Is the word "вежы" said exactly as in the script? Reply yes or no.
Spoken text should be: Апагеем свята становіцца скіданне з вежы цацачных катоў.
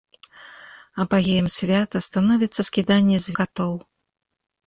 no